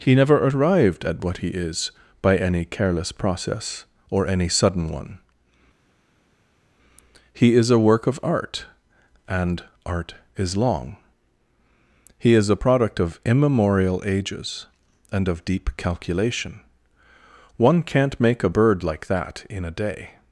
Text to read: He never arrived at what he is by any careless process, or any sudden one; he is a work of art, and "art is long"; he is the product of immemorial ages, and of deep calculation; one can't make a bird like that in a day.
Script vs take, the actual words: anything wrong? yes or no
yes